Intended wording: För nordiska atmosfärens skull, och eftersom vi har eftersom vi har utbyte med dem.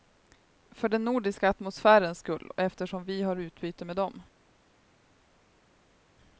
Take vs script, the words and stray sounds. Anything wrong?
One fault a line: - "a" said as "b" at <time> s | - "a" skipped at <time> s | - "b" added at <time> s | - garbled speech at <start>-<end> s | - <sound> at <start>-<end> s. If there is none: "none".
- "den" added at 0.9 s
- "eftersom vi har" skipped at 3.4 s